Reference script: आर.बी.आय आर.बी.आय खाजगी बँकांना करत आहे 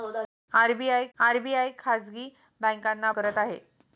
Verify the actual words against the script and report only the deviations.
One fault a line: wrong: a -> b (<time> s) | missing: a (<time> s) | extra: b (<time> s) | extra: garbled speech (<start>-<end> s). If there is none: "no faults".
no faults